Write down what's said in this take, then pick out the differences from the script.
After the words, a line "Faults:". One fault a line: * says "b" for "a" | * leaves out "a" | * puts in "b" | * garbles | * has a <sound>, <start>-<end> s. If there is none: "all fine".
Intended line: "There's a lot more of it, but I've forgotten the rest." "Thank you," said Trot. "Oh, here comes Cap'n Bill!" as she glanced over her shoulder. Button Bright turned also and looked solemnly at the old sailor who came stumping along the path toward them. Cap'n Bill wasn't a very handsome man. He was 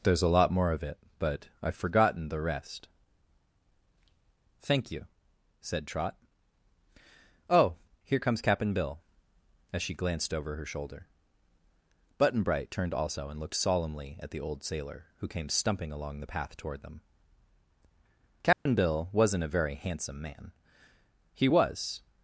"There's a lot more of it, but I've forgotten the rest." "Thank you," said Trot. "Oh, here comes Cap'n Bill!" as she glanced over her shoulder. Button Bright turned also and looked solemnly at the old sailor who came stumping along the path toward them. Cap'n Bill wasn't a very handsome man. He was
Faults:
* has a dropout, 18.5-18.7 s